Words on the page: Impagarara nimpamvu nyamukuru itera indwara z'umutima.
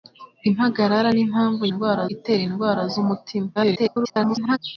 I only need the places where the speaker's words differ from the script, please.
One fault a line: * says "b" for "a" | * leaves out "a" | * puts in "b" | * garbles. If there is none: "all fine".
* says "indwara" for "nyamukuru"
* garbles